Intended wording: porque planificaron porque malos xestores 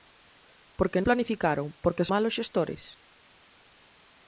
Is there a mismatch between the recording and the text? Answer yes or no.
no